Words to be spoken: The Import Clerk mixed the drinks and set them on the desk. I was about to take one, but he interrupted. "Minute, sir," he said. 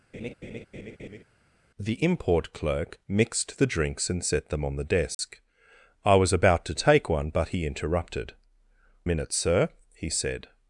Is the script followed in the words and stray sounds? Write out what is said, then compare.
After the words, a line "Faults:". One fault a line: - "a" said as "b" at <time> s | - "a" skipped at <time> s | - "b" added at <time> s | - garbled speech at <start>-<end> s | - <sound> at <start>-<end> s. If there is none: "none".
The Import Clerk mixed the drinks and set them on the desk. I was about to take one, but he interrupted. "Minute, sir," he said.
Faults:
- laugh at 0.1-1.2 s
- dropout at 5.1-5.2 s